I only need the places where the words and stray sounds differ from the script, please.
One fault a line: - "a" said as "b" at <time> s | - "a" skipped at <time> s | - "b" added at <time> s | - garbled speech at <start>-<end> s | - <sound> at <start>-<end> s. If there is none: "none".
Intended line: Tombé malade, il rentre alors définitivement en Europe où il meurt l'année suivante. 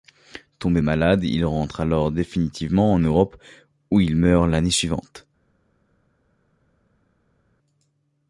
none